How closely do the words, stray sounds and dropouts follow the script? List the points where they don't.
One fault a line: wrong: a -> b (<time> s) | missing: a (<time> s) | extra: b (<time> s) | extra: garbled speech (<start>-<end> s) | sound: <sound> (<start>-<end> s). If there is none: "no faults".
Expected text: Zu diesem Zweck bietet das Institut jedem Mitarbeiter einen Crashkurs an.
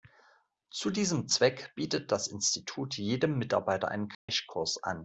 sound: dropout (4.1-4.3 s)